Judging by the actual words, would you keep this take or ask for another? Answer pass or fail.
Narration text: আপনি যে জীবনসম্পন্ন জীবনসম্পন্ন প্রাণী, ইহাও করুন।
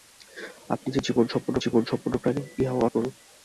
pass